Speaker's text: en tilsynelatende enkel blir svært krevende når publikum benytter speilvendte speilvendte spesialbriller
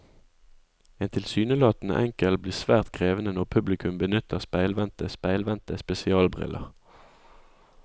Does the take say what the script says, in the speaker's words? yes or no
yes